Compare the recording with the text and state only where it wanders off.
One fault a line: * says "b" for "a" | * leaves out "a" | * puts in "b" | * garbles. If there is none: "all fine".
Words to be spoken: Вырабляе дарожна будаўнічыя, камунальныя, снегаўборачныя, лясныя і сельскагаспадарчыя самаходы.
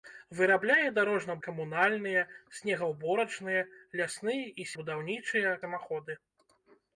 * leaves out "будаўнічыя"
* says "будаўнічыя" for "сельскагаспадарчыя"